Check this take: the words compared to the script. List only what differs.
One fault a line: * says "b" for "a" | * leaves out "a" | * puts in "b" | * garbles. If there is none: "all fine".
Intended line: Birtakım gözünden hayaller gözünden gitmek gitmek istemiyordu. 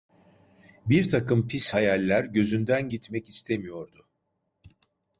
* says "pis" for "gözünden"
* leaves out "gitmek"